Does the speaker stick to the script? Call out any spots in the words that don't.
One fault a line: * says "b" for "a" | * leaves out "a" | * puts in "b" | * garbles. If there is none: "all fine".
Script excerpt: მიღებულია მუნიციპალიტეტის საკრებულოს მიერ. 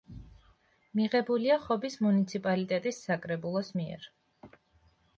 * puts in "ხობის"